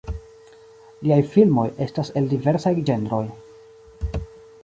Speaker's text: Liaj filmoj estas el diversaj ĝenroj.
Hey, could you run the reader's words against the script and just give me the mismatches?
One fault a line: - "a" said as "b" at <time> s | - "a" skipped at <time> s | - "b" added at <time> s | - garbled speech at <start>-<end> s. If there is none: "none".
none